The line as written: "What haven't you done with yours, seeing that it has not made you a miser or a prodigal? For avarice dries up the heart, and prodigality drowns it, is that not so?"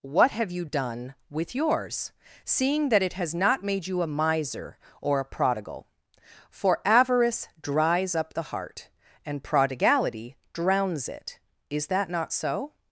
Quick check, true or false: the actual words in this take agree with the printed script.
false